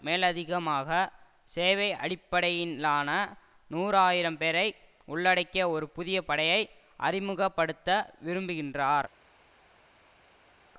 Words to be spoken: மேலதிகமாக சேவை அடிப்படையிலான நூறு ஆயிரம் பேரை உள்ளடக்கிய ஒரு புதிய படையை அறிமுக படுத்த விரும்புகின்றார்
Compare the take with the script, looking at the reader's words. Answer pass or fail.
pass